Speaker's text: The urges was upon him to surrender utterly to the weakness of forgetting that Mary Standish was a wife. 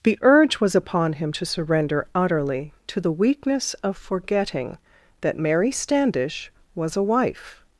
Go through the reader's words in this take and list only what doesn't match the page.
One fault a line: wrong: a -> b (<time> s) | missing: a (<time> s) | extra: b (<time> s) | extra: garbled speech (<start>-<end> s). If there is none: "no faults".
wrong: urges -> urge (0.2 s)